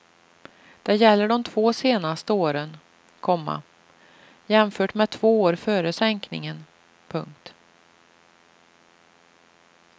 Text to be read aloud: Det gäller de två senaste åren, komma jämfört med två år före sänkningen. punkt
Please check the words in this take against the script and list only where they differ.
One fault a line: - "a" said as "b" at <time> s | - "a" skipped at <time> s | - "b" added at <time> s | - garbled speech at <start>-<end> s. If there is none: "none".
none